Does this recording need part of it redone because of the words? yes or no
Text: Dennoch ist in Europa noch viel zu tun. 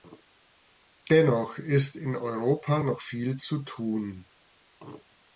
no